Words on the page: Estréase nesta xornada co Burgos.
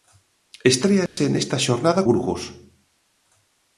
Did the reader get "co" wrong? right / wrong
wrong